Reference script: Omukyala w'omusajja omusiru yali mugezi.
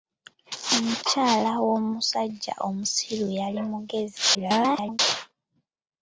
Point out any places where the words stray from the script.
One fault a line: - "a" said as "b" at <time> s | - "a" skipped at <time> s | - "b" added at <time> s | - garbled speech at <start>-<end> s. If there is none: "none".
- garbled speech at 4.3-5.0 s